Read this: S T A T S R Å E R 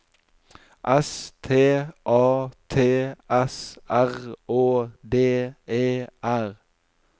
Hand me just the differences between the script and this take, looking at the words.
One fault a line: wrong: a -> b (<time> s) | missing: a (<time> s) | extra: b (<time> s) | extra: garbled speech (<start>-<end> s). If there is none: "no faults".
extra: D (5.0 s)